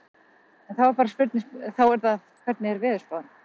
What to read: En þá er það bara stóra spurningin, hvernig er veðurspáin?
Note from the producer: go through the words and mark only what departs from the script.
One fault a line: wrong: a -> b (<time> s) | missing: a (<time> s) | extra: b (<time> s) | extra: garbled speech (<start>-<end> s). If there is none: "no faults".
missing: bara stóra spurningin (2.2 s)